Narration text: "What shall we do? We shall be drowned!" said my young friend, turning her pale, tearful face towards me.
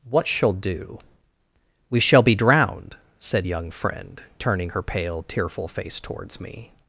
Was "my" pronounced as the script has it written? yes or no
no